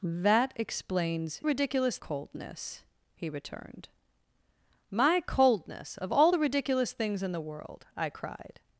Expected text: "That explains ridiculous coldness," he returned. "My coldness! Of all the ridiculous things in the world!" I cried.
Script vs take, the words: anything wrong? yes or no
no